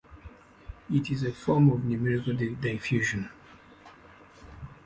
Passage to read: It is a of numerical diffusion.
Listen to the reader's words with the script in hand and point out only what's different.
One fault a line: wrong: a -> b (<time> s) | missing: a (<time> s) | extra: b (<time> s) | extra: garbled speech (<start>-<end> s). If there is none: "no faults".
extra: form (1.3 s)